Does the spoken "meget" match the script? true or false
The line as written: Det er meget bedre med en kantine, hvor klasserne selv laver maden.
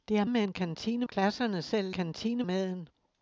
false